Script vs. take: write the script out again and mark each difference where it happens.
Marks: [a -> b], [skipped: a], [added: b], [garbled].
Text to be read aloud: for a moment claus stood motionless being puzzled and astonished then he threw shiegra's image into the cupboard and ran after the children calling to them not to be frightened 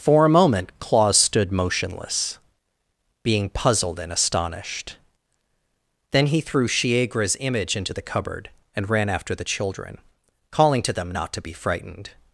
for a moment claus stood motionless being puzzled and astonished then he threw shiegra's image into the cupboard and ran after the children calling to them not to be frightened